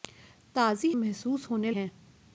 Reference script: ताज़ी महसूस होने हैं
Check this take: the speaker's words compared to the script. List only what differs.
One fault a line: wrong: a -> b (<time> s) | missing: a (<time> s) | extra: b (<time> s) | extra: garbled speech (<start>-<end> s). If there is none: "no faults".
no faults